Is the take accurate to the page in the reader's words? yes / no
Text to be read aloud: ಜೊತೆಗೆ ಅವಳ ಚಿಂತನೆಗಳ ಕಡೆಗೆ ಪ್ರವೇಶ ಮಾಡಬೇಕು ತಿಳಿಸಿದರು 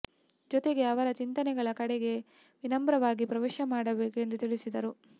no